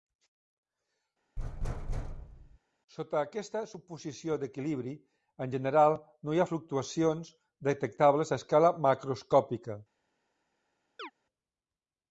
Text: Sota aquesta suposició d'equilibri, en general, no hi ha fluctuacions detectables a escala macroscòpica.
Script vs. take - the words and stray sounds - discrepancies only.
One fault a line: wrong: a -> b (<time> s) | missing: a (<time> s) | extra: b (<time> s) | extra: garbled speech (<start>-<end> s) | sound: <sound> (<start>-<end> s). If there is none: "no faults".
sound: thud (1.4-2.6 s)
sound: chirp (11.0-11.1 s)